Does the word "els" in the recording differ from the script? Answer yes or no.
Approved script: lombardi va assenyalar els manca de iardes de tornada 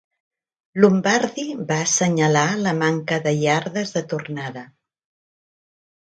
yes